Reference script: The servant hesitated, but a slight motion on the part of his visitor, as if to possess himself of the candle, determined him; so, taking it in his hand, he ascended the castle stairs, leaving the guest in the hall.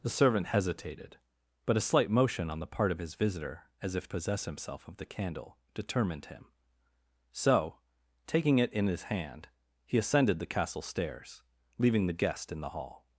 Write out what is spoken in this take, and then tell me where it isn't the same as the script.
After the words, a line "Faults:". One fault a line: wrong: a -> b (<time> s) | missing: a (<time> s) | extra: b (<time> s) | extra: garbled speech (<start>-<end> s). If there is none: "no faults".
The servant hesitated, but a slight motion on the part of his visitor, as if possess himself of the candle, determined him; so, taking it in his hand, he ascended the castle stairs, leaving the guest in the hall.
Faults:
missing: to (4.1 s)